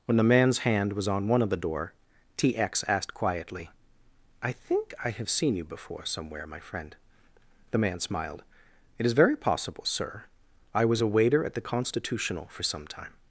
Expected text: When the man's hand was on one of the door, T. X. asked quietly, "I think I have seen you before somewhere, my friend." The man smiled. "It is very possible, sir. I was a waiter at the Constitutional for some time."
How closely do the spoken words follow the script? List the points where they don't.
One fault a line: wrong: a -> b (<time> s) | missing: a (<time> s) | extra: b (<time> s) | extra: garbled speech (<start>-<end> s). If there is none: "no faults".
no faults